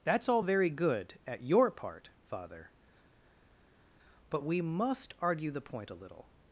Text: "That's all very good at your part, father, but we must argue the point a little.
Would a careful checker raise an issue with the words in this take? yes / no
no